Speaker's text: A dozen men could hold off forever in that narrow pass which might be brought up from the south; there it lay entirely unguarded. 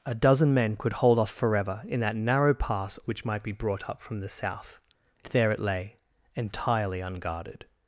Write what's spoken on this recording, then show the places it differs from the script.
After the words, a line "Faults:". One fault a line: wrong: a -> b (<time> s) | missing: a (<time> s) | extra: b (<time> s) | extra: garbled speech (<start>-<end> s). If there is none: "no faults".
A dozen men could hold off forever in that narrow pass which might be brought up from the south; there it lay entirely unguarded.
Faults:
no faults